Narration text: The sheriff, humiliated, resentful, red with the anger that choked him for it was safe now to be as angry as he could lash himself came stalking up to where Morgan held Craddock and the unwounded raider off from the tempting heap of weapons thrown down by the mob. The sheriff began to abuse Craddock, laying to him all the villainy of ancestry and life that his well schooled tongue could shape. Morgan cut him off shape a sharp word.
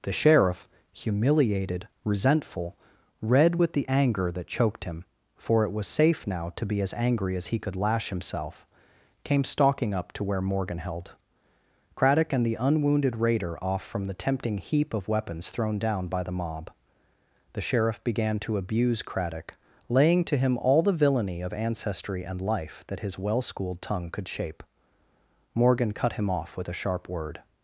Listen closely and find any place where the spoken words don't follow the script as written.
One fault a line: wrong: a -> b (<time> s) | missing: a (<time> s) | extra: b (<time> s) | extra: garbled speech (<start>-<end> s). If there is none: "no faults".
wrong: shape -> with (26.6 s)